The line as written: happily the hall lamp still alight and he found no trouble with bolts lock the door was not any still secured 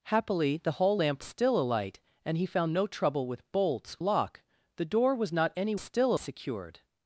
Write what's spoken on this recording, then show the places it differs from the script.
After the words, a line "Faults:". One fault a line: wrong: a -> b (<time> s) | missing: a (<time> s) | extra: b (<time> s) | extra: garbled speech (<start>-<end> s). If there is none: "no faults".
happily the hall lamp still alight and he found no trouble with bolts lock the door was not any still secured
Faults:
no faults